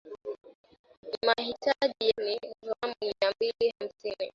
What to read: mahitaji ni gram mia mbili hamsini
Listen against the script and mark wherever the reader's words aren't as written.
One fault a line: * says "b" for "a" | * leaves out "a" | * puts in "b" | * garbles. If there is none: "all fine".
all fine